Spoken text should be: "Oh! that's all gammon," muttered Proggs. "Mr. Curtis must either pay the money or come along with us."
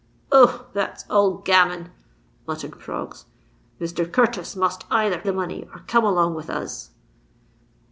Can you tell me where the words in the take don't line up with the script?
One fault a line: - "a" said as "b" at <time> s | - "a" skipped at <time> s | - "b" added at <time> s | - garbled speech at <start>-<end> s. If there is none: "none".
- "pay" skipped at 5.2 s